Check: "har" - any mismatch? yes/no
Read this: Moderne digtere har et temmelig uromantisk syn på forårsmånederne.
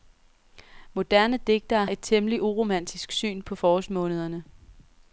yes